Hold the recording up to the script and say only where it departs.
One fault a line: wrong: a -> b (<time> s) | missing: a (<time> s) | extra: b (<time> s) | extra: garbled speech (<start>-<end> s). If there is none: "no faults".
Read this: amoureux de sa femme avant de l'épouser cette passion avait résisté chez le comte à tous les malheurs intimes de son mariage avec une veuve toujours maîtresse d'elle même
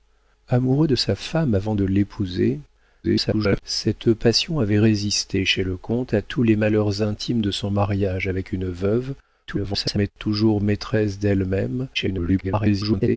extra: garbled speech (3.0-3.6 s)
extra: garbled speech (9.5-10.1 s)
extra: garbled speech (11.9-13.2 s)